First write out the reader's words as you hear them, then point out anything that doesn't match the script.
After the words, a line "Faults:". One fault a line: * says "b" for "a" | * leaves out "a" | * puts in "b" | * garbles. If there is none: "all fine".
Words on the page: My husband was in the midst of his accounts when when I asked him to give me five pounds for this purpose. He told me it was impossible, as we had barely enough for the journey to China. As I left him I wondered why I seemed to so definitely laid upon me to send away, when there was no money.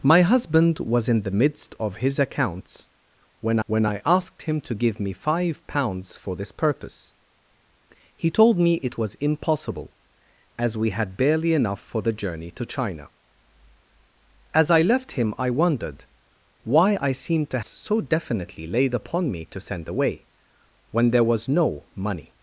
My husband was in the midst of his accounts when when I asked him to give me five pounds for this purpose. He told me it was impossible, as we had barely enough for the journey to China. As I left him I wondered why I seemed to so definitely laid upon me to send away, when there was no money.
Faults:
all fine